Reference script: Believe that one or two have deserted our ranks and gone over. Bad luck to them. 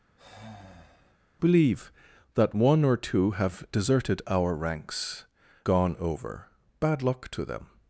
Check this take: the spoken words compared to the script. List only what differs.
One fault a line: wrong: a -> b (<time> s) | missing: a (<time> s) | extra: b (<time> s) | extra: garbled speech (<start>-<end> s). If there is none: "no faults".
missing: and (5.2 s)